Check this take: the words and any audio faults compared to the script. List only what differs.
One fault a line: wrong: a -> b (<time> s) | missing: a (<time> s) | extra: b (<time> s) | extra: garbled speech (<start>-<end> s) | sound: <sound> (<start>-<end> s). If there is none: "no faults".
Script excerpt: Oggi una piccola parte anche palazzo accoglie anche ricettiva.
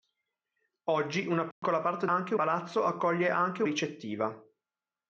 sound: dropout (1.5-1.6 s)